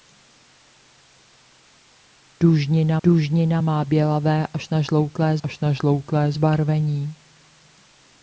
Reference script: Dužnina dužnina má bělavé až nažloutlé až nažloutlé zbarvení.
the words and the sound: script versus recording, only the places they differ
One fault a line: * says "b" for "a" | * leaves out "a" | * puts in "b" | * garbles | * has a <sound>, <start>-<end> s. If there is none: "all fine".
all fine